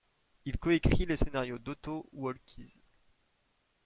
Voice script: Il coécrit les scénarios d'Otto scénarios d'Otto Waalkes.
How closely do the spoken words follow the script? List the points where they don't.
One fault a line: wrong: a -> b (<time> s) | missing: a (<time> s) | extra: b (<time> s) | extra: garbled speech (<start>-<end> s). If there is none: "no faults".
missing: scénarios d'Otto (2.1 s)